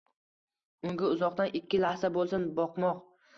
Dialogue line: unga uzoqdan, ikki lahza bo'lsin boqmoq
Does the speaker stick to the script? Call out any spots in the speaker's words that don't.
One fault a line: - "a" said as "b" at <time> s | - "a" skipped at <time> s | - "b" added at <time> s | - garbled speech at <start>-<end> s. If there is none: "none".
none